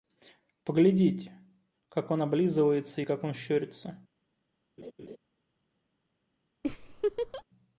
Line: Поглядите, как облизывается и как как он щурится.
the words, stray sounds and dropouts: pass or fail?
fail